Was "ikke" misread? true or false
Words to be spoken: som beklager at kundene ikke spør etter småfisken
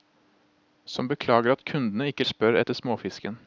false